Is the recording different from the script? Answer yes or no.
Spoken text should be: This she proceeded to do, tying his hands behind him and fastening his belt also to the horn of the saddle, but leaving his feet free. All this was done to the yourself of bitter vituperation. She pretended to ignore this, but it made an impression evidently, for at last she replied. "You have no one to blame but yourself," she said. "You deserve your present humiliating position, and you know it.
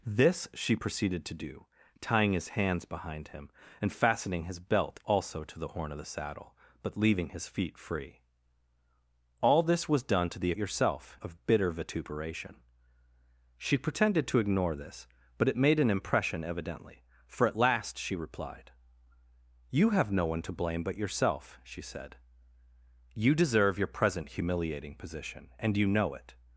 no